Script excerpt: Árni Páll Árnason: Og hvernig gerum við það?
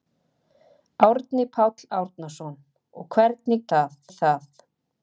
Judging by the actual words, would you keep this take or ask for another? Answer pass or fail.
fail